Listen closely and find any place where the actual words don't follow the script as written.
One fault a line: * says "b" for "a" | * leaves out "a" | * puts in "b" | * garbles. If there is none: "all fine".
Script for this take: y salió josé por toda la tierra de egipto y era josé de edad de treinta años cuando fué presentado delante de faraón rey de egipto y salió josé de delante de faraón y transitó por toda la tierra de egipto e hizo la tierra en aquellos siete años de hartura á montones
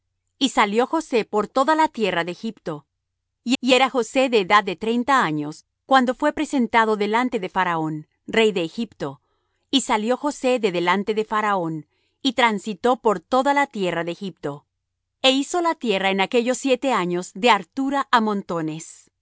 * puts in "y"